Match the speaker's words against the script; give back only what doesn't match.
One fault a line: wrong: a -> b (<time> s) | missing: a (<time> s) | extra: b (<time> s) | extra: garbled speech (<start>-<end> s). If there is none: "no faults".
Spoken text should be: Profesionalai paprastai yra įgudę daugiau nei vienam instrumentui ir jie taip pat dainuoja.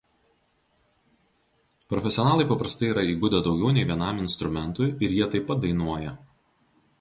no faults